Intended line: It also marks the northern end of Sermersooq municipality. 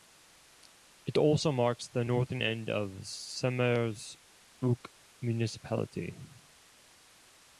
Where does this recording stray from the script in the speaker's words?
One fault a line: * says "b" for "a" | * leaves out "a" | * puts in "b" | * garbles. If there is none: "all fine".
all fine